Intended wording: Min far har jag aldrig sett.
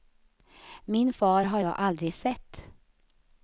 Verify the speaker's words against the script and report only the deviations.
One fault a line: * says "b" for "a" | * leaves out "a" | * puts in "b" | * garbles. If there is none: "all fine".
all fine